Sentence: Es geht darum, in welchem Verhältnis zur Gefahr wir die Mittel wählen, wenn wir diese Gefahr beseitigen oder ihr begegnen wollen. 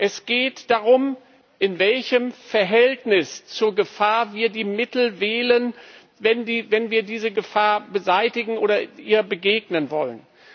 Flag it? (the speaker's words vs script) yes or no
no